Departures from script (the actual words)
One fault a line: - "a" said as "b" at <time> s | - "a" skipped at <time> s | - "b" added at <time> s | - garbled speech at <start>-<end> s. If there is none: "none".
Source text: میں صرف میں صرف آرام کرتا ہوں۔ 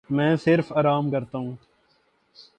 - "میں صرف" skipped at 0.7 s